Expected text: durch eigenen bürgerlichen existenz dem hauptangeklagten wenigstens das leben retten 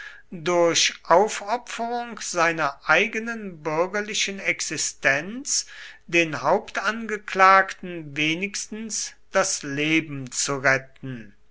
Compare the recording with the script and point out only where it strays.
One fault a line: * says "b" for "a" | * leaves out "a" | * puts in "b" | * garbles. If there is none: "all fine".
* puts in "aufopferung seiner"
* says "den" for "dem"
* puts in "zu"